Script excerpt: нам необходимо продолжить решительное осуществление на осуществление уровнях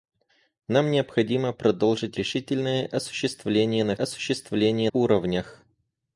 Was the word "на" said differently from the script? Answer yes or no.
no